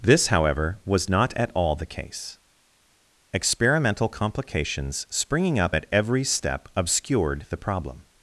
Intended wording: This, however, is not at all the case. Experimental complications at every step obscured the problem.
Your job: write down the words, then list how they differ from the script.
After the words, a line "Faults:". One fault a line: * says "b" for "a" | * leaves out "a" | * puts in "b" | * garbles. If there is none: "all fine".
This, however, was not at all the case. Experimental complications springing up at every step obscured the problem.
Faults:
* says "was" for "is"
* puts in "springing up"